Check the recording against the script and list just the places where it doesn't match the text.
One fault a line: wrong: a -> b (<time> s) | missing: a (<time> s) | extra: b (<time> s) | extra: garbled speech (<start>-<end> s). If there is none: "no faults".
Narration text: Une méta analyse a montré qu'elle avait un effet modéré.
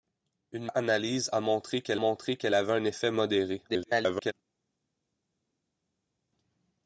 missing: méta (0.7 s)
extra: montré qu'elle (2.0 s)
extra: garbled speech (3.7-4.3 s)